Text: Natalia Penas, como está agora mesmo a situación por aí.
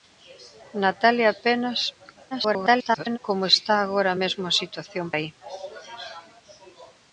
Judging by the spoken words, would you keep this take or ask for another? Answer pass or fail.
fail